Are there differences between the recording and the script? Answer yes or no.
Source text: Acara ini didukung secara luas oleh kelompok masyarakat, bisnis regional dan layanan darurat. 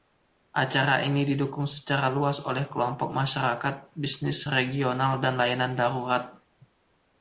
no